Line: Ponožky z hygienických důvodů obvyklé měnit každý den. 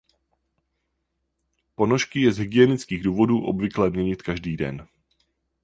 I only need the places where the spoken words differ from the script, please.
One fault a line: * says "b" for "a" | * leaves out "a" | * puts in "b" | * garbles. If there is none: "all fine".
* puts in "je"